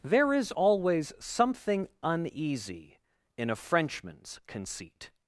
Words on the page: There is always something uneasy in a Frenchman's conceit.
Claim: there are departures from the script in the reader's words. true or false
false